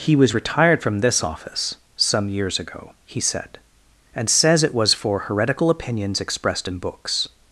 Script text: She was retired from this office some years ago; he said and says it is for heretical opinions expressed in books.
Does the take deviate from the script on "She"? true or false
true